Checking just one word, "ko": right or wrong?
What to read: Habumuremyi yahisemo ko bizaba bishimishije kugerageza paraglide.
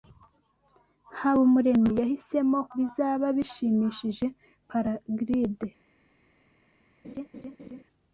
wrong